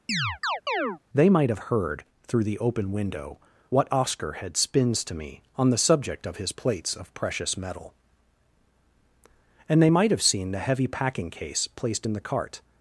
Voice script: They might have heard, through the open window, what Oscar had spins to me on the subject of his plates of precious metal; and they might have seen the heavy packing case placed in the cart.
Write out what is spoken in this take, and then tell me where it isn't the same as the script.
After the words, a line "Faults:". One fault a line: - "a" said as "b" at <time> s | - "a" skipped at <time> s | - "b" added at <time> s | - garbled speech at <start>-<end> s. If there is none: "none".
They might have heard, through the open window, what Oscar had spins to me on the subject of his plates of precious metal; and they might have seen the heavy packing case placed in the cart.
Faults:
none